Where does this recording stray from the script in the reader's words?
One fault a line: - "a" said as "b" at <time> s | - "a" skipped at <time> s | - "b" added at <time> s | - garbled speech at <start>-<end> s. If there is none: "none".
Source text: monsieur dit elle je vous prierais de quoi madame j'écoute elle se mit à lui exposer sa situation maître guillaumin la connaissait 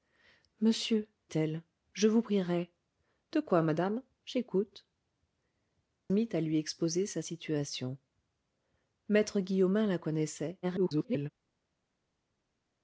- "dit" skipped at 1.1 s
- "elle se" skipped at 4.9 s
- garbled speech at 10.6-11.3 s